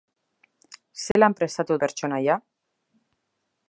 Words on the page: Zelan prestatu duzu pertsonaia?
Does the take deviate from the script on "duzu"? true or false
true